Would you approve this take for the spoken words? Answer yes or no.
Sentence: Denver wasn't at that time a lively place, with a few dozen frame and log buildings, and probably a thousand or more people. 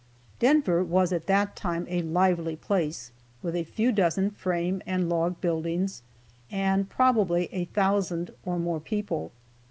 no